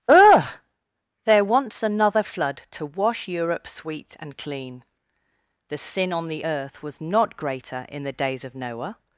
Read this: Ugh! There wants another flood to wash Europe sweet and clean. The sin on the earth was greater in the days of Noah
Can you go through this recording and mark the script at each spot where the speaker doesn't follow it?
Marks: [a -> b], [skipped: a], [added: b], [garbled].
Ugh! There wants another flood to wash Europe sweet and clean. The sin on the earth was [added: not] greater in the days of Noah